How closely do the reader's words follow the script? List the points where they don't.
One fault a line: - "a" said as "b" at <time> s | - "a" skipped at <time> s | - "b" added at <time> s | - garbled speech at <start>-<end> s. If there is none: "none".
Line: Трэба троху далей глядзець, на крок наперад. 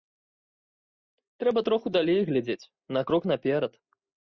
none